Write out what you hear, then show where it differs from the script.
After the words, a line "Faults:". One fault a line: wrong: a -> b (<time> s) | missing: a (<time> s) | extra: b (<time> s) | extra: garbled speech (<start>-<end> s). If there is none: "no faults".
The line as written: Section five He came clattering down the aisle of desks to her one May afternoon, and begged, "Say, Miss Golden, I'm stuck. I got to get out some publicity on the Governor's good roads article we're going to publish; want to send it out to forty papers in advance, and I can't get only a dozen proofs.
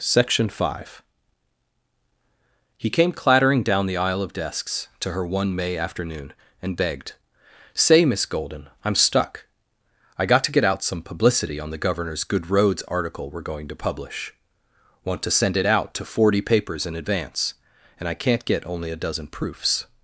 Section five He came clattering down the aisle of desks to her one May afternoon, and begged, "Say, Miss Golden, I'm stuck. I got to get out some publicity on the Governor's good roads article we're going to publish; want to send it out to forty papers in advance, and I can't get only a dozen proofs.
Faults:
no faults